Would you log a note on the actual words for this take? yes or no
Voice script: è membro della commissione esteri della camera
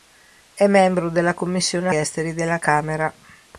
no